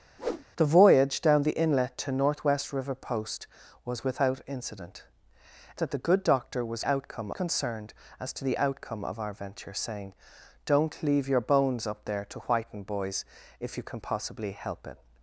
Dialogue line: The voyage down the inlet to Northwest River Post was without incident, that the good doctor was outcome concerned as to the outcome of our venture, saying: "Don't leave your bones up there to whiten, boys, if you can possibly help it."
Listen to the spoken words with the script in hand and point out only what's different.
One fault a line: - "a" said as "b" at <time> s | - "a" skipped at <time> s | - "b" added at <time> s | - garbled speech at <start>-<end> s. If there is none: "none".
none